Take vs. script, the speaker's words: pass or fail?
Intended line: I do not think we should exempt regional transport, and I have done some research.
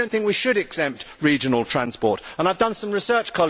pass